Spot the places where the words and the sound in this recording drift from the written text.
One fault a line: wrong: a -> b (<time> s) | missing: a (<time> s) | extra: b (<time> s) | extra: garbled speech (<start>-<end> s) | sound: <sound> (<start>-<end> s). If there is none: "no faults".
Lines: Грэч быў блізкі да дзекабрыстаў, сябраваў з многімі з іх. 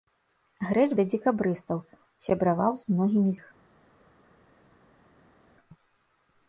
missing: быў блізкі (0.8 s)
missing: з (3.3 s)